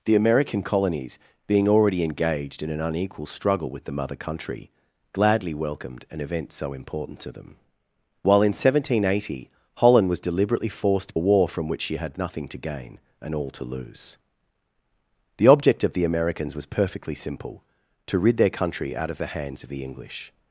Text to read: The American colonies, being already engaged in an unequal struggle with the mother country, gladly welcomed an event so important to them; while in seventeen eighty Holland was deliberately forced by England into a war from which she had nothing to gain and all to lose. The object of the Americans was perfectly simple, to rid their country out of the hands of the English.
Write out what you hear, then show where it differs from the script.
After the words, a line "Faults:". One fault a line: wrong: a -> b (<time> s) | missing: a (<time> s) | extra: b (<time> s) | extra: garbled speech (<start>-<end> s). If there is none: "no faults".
The American colonies, being already engaged in an unequal struggle with the mother country, gladly welcomed an event so important to them; while in seventeen eighty Holland was deliberately forced a war from which she had nothing to gain and all to lose. The object of the Americans was perfectly simple, to rid their country out of the hands of the English.
Faults:
missing: by England into (11.2 s)